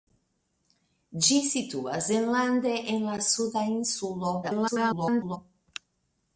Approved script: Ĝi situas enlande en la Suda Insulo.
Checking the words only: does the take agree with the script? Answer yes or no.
no